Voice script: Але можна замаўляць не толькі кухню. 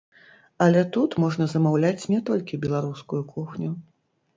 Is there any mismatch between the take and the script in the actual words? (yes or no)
yes